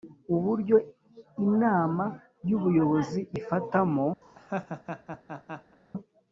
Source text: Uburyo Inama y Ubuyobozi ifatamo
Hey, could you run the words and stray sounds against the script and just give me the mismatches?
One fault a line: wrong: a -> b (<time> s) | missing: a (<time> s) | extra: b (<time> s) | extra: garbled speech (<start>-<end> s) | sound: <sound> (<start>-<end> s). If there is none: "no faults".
sound: laugh (4.2-5.8 s)